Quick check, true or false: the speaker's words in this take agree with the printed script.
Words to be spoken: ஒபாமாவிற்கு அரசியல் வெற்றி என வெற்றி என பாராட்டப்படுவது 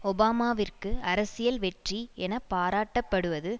false